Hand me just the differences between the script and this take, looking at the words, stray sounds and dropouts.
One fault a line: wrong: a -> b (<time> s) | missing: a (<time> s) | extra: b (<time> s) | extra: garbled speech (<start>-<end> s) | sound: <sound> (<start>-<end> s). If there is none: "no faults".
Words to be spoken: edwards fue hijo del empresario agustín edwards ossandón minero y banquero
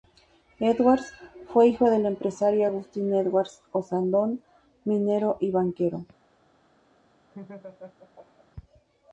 sound: laugh (7.3-8.5 s)